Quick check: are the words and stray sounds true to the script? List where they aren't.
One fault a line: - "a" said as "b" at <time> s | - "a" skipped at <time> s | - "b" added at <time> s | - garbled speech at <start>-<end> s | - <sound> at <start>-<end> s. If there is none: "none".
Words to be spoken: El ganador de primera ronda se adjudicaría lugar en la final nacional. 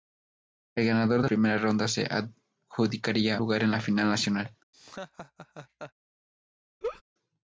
- laugh at 4.7-5.9 s
- laugh at 6.8-7.0 s